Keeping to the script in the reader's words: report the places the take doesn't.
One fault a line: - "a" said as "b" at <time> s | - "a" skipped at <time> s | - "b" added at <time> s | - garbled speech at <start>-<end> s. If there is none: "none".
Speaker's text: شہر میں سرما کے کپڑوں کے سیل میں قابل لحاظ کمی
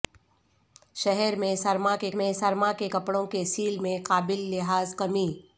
- "میں سرما کے" added at 2.1 s